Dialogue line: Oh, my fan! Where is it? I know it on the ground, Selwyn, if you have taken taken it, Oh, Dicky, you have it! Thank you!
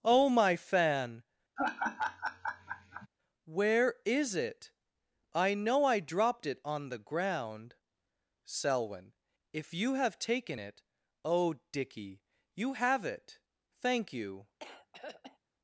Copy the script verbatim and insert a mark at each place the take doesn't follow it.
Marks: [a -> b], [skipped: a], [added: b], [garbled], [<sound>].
Oh, my fan! [laugh] Where is it? I know [added: I dropped] it on the ground, Selwyn, if you have taken [skipped: taken] it, Oh, Dicky, you have it! Thank you! [throat clearing]